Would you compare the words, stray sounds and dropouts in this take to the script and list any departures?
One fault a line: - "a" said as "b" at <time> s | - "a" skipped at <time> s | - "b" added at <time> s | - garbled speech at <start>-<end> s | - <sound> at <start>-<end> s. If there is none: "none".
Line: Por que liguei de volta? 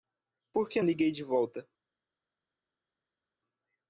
none